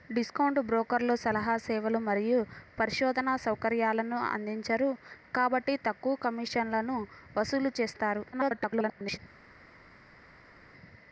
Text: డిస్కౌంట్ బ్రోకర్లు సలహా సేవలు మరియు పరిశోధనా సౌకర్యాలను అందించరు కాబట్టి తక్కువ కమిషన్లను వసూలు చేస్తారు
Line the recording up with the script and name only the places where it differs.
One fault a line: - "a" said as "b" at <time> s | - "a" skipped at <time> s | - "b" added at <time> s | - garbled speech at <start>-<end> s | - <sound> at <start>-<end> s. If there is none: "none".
- garbled speech at 8.3-9.2 s